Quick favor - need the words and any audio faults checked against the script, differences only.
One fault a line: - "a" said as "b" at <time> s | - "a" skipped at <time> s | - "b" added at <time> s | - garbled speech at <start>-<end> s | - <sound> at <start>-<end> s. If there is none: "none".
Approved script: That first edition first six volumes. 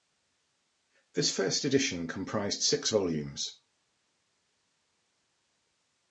- "That" said as "This" at 1.1 s
- "first" said as "comprised" at 2.1 s